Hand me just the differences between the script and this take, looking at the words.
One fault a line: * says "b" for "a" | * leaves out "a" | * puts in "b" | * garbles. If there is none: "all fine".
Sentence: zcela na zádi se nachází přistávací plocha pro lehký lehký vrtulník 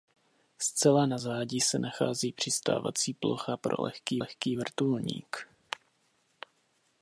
all fine